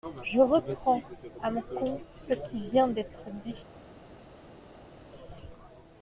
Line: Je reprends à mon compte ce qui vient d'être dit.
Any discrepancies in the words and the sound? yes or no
no